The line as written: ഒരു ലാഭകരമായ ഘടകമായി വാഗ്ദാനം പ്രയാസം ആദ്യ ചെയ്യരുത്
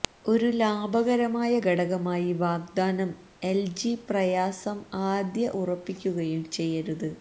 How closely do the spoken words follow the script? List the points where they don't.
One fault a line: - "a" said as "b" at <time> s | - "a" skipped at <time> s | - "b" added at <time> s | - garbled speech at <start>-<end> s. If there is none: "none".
- "എൽജി" added at 3.4 s
- "ഉറപ്പിക്കുകയും" added at 5.6 s